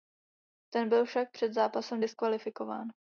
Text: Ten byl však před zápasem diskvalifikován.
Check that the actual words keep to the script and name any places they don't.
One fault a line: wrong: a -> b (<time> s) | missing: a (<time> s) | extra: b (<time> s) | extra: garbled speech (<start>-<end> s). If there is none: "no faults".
no faults